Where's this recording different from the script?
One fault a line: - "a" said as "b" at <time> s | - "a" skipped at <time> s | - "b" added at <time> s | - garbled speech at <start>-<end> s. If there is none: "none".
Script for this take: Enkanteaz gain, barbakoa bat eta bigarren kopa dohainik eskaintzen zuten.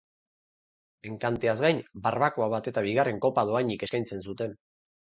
none